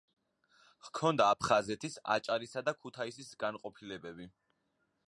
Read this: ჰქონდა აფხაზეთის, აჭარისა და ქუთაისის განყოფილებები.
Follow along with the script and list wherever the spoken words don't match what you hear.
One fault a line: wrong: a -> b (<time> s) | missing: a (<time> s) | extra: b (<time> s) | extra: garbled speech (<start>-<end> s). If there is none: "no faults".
no faults